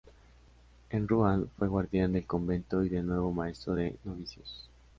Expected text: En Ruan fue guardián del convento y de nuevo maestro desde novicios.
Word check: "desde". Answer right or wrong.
wrong